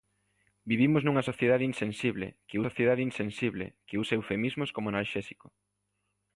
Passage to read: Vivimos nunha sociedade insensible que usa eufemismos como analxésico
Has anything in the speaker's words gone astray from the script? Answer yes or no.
yes